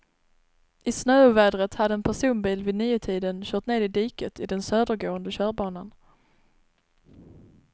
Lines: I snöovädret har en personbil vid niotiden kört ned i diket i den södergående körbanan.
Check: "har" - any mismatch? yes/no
yes